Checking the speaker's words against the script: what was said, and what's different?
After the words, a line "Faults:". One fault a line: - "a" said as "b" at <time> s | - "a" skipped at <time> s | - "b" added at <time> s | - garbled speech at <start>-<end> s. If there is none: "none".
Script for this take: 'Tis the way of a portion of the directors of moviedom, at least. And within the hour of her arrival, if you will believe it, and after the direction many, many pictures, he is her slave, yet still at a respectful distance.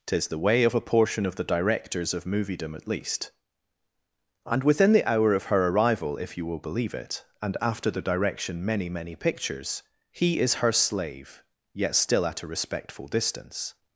'Tis the way of a portion of the directors of moviedom, at least. And within the hour of her arrival, if you will believe it, and after the direction many, many pictures, he is her slave, yet still at a respectful distance.
Faults:
none